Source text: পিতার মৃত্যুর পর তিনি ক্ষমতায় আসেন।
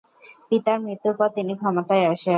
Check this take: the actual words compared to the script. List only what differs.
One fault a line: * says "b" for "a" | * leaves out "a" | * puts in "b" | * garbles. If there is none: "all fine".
all fine